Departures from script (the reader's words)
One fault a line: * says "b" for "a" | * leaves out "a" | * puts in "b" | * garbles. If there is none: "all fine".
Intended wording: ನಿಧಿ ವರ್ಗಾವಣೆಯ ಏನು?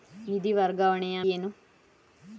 all fine